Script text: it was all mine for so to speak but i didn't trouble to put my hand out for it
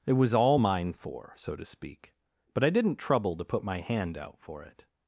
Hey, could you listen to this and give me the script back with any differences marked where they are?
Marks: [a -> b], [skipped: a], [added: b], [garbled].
it was all mine for so to speak but i didn't trouble to put my hand out for it